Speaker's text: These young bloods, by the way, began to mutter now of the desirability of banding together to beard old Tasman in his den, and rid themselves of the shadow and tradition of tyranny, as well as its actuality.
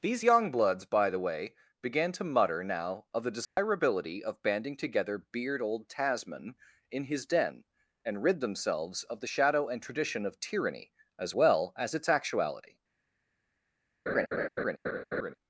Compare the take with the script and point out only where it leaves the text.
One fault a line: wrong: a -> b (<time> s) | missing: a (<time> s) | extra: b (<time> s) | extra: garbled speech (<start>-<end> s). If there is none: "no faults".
missing: to (5.2 s)